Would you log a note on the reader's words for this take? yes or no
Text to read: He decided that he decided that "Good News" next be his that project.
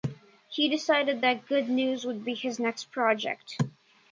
yes